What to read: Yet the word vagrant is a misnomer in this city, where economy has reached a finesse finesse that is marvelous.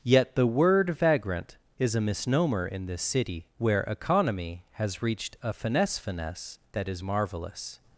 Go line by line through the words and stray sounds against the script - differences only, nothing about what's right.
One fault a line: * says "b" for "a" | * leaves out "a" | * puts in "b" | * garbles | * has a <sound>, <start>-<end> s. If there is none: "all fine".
all fine